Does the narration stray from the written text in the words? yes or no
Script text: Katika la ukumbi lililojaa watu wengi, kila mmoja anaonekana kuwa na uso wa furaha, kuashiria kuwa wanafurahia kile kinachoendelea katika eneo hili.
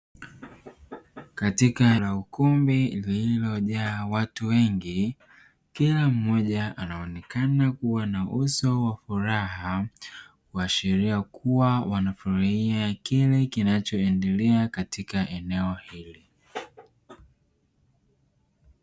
no